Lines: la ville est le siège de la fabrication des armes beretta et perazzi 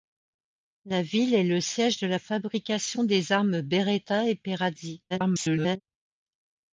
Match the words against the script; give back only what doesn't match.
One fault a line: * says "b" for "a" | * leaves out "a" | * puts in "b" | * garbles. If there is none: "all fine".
* garbles